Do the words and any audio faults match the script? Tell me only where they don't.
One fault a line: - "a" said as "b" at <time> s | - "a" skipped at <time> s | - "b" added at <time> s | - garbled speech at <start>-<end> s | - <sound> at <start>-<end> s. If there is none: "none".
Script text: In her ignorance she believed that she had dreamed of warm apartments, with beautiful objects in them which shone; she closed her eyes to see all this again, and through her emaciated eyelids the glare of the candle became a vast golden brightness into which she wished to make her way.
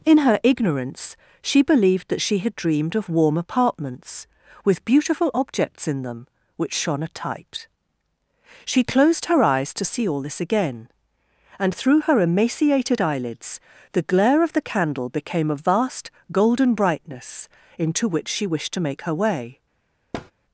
- "a tight" added at 7.0 s
- thud at 20.1-20.3 s